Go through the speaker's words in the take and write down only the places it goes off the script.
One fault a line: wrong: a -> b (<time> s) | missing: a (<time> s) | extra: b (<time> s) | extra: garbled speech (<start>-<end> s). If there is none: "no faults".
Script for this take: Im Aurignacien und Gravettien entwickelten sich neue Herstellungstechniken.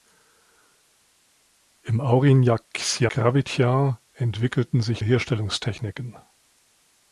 missing: und (3.1 s)
missing: neue (5.0 s)